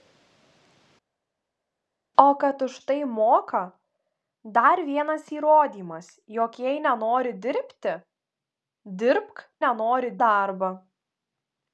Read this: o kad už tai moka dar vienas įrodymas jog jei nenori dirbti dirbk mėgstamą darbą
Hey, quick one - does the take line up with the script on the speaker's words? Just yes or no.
no